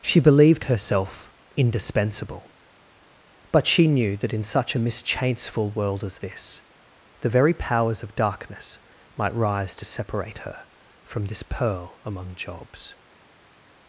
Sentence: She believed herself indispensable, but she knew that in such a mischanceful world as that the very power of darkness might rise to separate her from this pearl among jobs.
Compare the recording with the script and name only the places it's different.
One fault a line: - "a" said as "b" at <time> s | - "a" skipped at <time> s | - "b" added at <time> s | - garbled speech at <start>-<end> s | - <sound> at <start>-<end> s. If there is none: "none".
- "that" said as "this" at 6.2 s
- "power" said as "powers" at 7.5 s